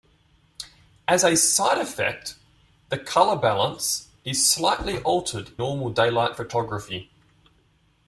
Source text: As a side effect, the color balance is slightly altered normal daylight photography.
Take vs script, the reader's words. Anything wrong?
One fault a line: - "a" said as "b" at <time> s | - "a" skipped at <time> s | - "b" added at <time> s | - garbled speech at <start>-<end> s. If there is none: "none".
none